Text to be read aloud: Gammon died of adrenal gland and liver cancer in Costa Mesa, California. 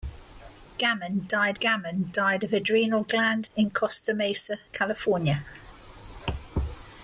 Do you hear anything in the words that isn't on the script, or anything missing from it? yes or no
yes